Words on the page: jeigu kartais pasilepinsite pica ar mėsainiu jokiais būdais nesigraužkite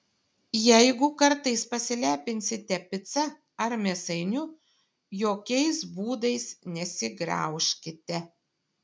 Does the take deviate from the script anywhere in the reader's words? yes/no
no